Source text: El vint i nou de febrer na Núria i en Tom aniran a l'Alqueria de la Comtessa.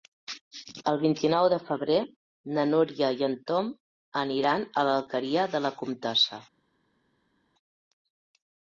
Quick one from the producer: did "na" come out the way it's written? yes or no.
yes